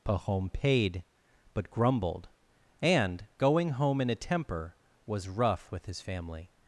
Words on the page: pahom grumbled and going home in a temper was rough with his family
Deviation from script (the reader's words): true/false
true